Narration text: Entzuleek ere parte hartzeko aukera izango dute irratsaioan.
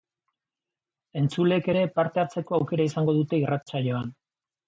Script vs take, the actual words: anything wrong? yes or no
no